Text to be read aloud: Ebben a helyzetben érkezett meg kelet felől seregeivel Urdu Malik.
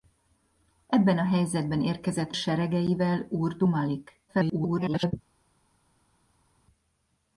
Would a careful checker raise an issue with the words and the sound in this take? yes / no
yes